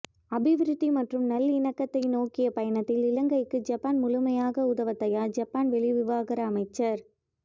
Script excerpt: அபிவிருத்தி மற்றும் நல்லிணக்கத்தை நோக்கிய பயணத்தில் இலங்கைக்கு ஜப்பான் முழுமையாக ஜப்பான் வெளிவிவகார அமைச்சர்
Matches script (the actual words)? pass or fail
fail